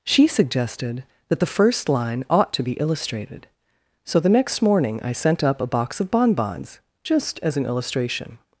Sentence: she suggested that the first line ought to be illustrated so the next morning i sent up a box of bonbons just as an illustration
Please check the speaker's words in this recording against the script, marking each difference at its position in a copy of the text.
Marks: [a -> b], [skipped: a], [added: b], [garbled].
she suggested that the first line ought to be illustrated so the next morning i sent up a box of bonbons just as an illustration